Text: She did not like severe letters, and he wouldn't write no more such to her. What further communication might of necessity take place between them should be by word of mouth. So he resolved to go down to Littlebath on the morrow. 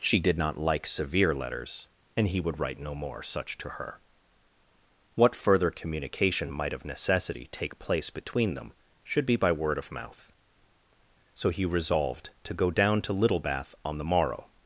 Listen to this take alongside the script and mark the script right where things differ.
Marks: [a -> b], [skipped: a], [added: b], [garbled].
She did not like severe letters, and he [wouldn't -> would] write no more such to her. What further communication might of necessity take place between them should be by word of mouth. So he resolved to go down to Littlebath on the morrow.